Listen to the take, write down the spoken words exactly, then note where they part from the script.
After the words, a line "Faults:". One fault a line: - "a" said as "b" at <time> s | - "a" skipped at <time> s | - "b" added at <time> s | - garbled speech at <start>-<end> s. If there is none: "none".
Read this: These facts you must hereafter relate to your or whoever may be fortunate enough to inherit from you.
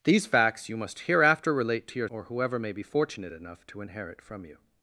These facts you must hereafter relate to your or whoever may be fortunate enough to inherit from you.
Faults:
none